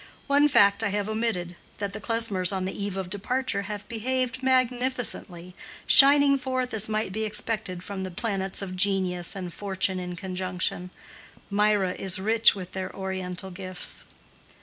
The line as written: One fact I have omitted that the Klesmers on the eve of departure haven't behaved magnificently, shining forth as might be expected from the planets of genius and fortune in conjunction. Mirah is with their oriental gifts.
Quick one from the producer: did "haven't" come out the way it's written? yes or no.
no